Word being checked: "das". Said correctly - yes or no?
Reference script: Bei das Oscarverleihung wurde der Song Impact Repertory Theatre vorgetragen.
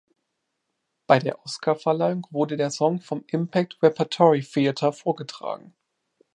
no